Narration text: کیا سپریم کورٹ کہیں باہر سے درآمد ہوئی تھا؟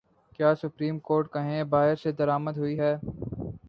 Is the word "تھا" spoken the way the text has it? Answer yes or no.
no